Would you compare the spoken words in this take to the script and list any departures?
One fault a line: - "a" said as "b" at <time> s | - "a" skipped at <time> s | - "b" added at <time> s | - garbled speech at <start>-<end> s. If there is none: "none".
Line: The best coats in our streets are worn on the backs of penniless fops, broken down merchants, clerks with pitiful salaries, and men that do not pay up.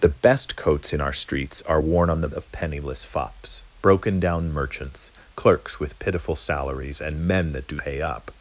- "backs" skipped at 2.3 s
- "not" skipped at 7.8 s